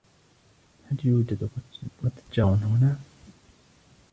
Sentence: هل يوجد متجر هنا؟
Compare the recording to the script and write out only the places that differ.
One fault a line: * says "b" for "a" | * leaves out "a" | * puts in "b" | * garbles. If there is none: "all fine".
all fine